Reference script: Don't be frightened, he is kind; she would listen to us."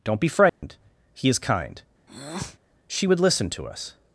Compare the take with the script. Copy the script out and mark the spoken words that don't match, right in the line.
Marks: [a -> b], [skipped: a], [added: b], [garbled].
Don't be frightened, he is kind; she would listen to us."